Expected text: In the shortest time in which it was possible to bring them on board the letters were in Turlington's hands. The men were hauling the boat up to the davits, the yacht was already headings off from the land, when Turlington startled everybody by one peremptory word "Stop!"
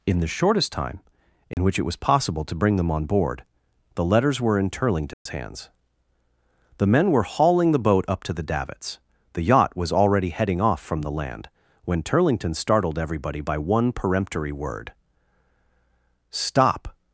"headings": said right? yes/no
no